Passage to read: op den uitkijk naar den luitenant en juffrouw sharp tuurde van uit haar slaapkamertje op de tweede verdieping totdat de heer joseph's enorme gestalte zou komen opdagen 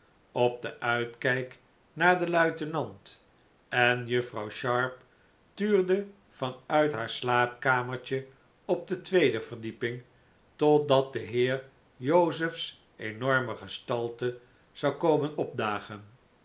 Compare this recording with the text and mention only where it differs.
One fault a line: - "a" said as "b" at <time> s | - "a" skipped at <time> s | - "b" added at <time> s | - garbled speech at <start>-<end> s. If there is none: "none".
none